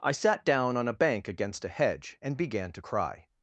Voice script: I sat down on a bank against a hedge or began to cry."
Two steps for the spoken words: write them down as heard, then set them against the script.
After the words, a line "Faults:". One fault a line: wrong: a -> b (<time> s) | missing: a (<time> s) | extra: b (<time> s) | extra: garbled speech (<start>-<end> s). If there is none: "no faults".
I sat down on a bank against a hedge and began to cry."
Faults:
wrong: or -> and (2.2 s)